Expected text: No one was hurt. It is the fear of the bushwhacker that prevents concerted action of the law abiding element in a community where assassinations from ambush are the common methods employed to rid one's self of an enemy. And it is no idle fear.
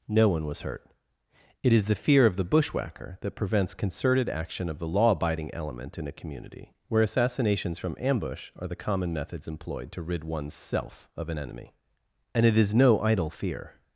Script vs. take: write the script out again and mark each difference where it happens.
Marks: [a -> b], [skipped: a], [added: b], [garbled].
No one was hurt. It is the fear of the bushwhacker that prevents concerted action of the law abiding element in a community where assassinations from ambush are the common methods employed to rid one's self of an enemy. And it is no idle fear.